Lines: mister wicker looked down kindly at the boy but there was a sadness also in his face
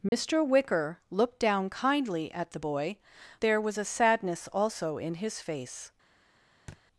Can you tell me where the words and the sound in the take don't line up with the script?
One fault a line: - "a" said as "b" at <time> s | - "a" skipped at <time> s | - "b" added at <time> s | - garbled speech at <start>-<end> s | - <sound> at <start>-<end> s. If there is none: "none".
- dropout at 0.1-0.1 s
- "but" skipped at 3.0 s
- thud at 6.7-6.8 s